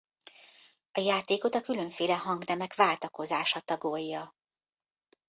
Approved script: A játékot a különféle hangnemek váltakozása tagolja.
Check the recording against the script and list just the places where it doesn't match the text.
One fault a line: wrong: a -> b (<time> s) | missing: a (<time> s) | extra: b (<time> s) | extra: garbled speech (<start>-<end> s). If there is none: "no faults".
no faults